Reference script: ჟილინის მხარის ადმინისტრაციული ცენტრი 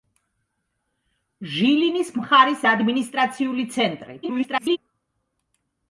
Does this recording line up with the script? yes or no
no